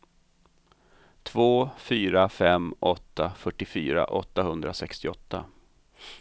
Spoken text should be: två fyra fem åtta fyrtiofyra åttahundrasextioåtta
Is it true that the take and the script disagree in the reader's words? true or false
false